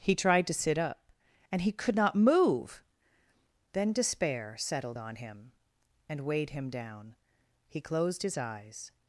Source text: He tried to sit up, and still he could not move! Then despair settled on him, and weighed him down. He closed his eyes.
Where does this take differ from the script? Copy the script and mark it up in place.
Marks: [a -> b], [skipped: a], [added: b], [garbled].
He tried to sit up, and [skipped: still] he could not move! Then despair settled on him, and weighed him down. He closed his eyes.